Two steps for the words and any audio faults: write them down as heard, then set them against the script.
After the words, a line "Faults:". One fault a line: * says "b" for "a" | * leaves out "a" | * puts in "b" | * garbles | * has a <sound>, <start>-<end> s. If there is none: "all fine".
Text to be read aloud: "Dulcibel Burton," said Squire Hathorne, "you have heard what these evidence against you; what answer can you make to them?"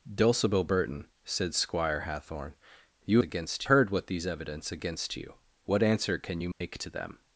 "Dulcibel Burton," said Squire Hathorne, "you against heard what these evidence against you; what answer can you make to them?"
Faults:
* says "against" for "have"
* has a dropout, 6.5-6.6 s